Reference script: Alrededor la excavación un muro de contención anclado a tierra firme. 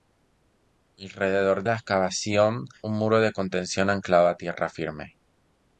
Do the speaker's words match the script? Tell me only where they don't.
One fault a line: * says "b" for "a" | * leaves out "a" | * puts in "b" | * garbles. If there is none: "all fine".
all fine